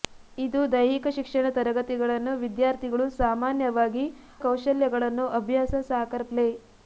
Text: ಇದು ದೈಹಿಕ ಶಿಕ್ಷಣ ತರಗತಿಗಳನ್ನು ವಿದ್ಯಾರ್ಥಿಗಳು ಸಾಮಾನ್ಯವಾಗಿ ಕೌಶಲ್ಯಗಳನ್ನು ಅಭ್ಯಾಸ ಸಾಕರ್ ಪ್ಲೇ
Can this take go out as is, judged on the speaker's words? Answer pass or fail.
pass